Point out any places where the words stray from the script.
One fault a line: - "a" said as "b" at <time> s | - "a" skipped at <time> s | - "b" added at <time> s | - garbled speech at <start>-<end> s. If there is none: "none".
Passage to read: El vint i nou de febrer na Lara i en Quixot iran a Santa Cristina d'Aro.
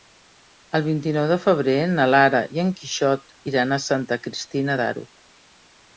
none